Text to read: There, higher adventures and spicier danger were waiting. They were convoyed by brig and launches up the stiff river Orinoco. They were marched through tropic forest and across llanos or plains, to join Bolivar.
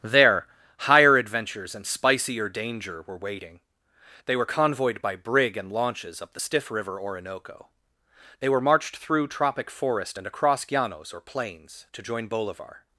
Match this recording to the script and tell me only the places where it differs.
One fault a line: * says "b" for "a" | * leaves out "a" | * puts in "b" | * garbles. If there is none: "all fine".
all fine